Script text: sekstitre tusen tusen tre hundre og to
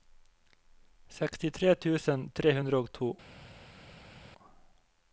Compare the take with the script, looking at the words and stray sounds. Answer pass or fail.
fail